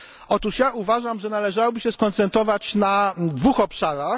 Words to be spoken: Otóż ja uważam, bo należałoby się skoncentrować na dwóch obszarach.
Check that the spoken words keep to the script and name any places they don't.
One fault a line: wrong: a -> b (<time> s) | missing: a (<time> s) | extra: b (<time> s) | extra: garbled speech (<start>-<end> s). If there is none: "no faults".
wrong: bo -> że (1.2 s)